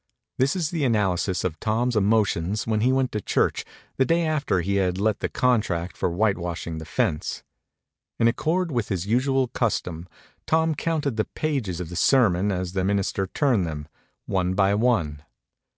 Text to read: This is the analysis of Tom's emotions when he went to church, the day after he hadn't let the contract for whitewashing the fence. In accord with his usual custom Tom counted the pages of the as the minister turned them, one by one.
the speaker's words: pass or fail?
fail